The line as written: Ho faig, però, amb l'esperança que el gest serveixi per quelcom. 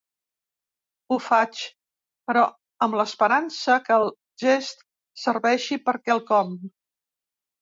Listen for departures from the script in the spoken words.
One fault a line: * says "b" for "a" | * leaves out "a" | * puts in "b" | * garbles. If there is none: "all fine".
all fine